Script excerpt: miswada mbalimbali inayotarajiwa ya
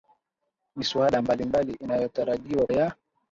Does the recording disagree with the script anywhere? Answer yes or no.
no